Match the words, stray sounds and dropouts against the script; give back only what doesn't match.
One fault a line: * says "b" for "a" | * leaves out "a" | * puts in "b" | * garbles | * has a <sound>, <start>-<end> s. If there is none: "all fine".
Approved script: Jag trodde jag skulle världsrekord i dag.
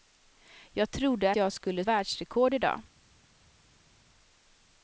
all fine